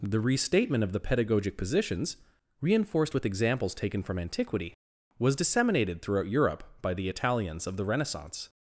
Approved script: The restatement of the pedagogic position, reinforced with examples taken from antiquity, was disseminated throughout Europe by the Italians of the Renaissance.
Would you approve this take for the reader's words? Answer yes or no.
no